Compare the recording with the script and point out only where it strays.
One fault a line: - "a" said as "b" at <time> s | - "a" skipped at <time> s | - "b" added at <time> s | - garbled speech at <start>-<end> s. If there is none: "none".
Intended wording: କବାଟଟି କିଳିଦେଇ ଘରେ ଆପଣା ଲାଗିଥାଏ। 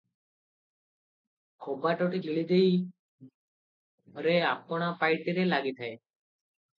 - "ପାଇଟିରେ" added at 5.0 s